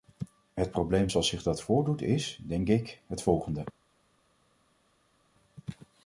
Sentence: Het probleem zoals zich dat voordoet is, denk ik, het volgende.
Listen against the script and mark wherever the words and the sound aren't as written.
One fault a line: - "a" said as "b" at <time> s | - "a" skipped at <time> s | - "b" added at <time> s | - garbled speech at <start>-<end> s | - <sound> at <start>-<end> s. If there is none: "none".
none